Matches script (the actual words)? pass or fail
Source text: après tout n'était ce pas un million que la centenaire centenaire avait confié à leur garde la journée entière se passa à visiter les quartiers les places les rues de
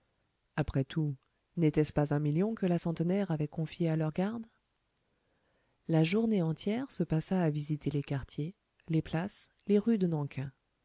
fail